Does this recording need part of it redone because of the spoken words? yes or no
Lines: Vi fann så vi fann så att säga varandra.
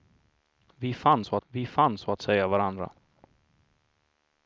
no